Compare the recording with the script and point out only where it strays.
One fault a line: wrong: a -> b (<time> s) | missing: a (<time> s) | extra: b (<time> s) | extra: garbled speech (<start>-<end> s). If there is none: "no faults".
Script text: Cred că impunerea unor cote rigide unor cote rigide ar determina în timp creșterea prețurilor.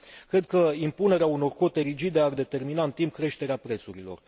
missing: unor cote rigide (2.2 s)